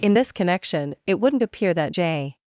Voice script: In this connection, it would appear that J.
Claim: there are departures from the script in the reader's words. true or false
true